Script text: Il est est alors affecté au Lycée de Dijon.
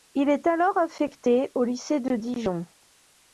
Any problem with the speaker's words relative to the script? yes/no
yes